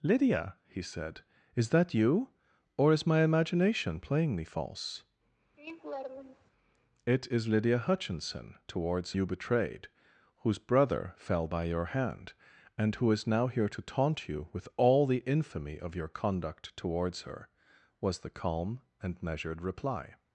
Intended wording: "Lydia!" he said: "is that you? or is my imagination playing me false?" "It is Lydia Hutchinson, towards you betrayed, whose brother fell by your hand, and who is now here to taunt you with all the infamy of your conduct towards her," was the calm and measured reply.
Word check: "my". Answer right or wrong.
right